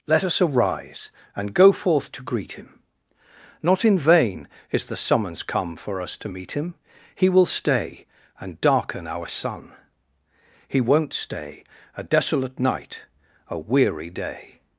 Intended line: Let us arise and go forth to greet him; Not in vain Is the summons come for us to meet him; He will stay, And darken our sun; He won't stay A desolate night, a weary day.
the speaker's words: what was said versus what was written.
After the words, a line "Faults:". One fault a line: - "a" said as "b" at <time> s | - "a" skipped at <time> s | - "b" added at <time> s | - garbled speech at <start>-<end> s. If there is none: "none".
Let us arise and go forth to greet him; Not in vain Is the summons come for us to meet him; He will stay, And darken our sun; He won't stay A desolate night, a weary day.
Faults:
none